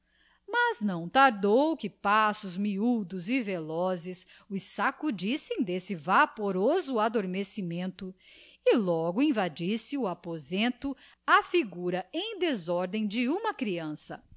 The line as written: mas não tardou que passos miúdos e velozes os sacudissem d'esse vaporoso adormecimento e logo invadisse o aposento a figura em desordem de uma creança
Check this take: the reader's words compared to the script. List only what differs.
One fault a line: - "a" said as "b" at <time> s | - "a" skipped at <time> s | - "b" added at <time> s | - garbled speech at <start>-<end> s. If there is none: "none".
none